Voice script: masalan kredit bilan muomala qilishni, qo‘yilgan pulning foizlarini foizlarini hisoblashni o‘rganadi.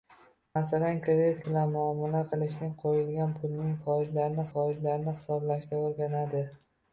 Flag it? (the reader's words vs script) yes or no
no